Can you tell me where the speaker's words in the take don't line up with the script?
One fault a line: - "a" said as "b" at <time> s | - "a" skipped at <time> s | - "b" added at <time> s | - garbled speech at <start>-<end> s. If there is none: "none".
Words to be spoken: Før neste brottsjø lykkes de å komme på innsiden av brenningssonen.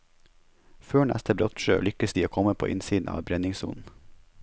none